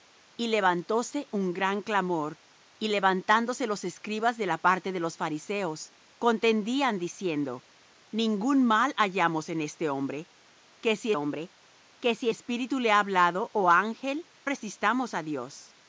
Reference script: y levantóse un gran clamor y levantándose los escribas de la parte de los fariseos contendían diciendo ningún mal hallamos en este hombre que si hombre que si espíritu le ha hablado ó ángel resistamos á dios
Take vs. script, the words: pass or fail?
pass